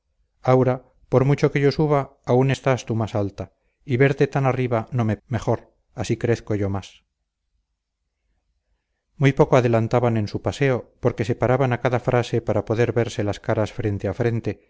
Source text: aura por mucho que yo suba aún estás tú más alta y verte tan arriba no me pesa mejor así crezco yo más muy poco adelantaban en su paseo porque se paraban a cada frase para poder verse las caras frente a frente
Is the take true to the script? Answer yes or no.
no